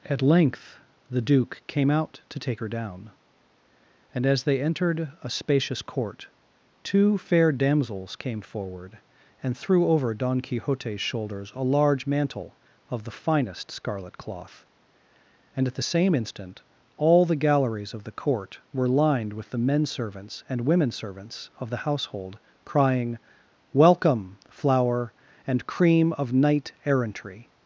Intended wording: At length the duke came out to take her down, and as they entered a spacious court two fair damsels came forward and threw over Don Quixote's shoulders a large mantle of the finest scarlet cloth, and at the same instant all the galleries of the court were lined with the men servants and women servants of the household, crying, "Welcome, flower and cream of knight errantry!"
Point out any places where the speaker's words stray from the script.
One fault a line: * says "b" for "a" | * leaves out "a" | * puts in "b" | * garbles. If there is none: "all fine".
all fine